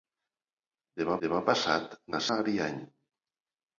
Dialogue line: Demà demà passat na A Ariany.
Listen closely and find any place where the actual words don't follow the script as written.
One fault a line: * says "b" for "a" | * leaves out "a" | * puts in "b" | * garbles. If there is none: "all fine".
all fine